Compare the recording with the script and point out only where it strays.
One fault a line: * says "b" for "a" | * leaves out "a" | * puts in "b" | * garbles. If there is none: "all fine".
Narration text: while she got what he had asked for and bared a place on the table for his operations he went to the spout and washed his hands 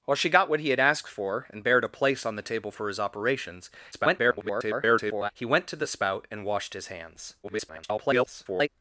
* garbles
* garbles